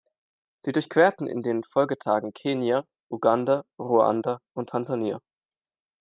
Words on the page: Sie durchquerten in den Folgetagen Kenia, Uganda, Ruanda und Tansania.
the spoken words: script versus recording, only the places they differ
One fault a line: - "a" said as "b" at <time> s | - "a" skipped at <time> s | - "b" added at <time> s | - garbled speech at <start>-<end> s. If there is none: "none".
none